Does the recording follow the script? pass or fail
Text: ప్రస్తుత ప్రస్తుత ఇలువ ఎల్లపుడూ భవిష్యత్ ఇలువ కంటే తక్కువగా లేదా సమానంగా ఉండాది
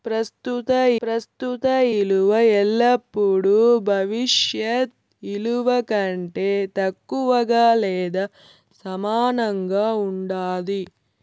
pass